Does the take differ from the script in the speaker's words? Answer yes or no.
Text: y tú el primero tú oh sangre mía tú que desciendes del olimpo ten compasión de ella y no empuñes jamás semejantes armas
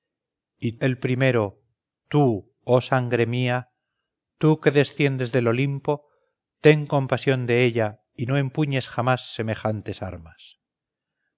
yes